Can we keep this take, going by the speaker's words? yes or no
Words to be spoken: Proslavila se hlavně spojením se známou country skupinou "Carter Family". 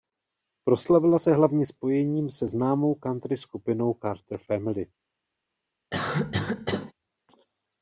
yes